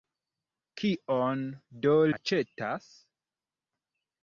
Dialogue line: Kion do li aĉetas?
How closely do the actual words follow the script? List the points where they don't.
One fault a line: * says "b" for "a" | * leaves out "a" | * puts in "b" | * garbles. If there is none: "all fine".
* leaves out "li"